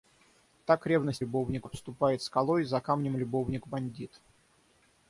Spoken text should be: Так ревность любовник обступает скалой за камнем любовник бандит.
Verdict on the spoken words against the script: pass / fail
pass